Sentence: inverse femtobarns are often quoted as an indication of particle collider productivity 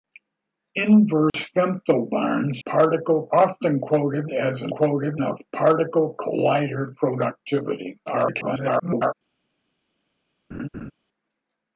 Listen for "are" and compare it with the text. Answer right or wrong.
wrong